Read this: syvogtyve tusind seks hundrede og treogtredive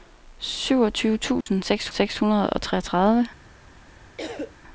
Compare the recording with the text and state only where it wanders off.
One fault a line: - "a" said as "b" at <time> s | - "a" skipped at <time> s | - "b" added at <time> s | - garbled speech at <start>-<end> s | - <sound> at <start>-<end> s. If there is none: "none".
- dropout at 1.4-1.5 s
- "seks" added at 1.9 s
- cough at 4.2-4.6 s